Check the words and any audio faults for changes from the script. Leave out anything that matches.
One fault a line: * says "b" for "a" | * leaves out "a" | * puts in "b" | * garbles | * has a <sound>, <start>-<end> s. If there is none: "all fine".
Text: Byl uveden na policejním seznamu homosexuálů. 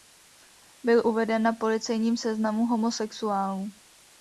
all fine